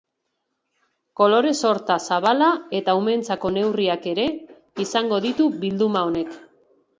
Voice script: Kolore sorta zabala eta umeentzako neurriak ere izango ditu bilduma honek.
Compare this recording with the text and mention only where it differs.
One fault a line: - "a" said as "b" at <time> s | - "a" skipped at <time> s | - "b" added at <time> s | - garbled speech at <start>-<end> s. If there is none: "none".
none